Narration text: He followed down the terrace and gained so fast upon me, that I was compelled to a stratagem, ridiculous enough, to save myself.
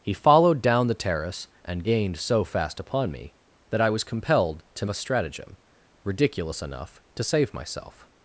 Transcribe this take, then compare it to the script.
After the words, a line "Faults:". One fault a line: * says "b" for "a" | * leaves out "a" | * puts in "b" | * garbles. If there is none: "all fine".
He followed down the terrace and gained so fast upon me, that I was compelled to a stratagem, ridiculous enough, to save myself.
Faults:
all fine